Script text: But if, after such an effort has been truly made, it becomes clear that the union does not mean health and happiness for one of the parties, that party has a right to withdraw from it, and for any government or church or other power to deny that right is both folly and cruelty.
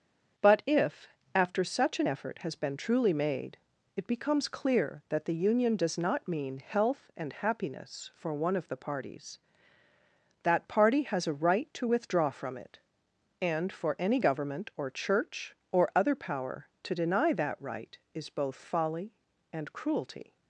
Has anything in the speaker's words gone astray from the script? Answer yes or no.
no